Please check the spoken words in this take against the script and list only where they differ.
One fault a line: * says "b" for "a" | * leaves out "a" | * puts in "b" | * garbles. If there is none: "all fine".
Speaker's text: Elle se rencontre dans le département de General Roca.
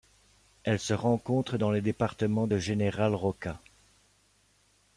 all fine